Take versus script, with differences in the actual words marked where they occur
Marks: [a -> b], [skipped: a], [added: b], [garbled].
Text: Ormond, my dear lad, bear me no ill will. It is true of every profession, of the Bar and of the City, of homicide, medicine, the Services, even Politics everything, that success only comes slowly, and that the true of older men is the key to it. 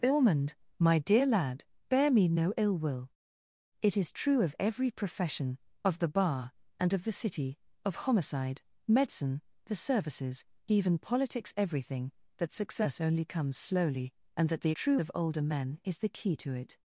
Ormond, my dear lad, bear me no ill will. It is true of every profession, of the Bar and of the City, of homicide, medicine, the Services, even Politics everything, that success only comes slowly, and that the true of older men is the key to it.